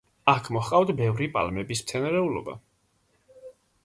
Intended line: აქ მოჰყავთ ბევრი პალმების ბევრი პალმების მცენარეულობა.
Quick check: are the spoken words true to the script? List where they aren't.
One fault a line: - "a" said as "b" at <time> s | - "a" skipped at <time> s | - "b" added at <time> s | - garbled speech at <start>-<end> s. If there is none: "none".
- "ბევრი პალმების" skipped at 1.8 s